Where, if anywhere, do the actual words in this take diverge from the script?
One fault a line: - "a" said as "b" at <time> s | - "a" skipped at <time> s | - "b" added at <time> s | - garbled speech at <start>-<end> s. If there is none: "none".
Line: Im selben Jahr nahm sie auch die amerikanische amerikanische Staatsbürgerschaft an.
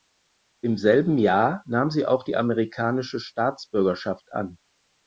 - "amerikanische" skipped at 3.2 s